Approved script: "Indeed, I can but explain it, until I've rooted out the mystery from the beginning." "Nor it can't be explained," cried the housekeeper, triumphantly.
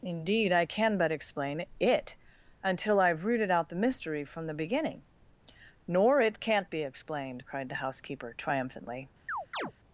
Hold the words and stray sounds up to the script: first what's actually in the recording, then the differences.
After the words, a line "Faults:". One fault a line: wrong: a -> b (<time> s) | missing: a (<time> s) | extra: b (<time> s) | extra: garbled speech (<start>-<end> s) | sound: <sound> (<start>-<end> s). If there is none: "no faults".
"Indeed, I can but explain it, until I've rooted out the mystery from the beginning." "Nor it can't be explained," cried the housekeeper, triumphantly.
Faults:
sound: chirp (9.3-9.7 s)